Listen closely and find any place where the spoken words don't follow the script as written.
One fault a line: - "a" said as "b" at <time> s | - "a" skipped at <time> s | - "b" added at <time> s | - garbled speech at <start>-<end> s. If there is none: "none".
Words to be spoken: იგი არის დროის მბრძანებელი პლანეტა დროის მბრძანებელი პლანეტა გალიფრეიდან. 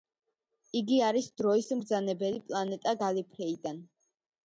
- "დროის მბრძანებელი პლანეტა" skipped at 3.0 s